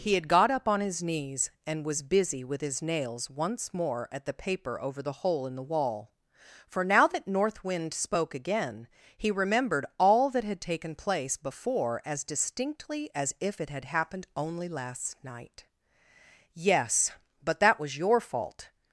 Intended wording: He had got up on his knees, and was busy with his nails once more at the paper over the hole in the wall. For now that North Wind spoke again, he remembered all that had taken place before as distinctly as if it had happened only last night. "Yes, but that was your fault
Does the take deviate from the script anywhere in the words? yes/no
no